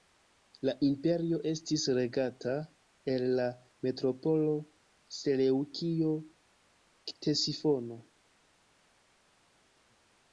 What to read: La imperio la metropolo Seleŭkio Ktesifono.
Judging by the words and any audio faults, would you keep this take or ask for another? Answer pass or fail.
fail